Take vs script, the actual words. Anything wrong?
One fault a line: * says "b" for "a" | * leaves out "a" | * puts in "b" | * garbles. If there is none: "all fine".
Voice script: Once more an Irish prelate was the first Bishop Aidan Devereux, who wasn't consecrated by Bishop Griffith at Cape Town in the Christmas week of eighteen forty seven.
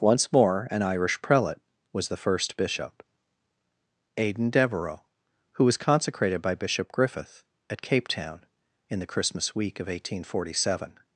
* says "was" for "wasn't"